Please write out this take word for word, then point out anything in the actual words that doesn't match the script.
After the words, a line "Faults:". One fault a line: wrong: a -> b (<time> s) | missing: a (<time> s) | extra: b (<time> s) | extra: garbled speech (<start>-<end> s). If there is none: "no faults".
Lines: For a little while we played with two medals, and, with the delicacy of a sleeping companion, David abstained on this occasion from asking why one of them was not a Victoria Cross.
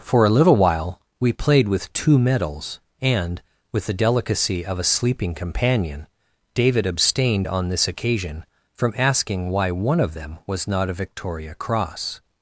For a little while we played with two medals, and, with the delicacy of a sleeping companion, David abstained on this occasion from asking why one of them was not a Victoria Cross.
Faults:
no faults